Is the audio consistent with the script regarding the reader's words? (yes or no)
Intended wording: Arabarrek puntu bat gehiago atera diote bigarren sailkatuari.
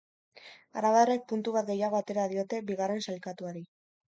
yes